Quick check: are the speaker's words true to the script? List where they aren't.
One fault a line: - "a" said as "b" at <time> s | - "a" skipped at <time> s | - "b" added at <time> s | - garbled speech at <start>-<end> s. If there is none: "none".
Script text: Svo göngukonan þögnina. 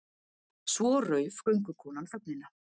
- "rauf" added at 1.1 s